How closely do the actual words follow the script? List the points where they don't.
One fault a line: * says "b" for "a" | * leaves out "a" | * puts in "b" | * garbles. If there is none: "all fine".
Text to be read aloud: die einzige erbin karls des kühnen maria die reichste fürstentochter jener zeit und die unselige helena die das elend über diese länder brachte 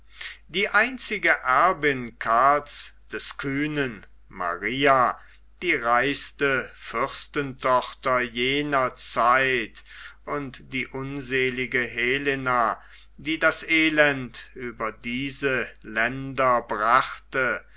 all fine